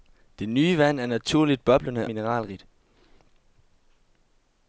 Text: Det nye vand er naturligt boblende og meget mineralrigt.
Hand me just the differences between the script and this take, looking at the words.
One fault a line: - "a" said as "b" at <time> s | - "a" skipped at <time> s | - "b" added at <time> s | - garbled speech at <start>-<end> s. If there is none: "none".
- "og meget" skipped at 2.1 s